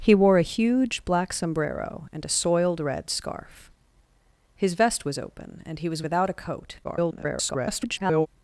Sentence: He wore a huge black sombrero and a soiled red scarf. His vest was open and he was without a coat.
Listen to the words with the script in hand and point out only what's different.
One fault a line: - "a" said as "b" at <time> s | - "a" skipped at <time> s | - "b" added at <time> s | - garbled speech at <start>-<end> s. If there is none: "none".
- garbled speech at 6.8-8.3 s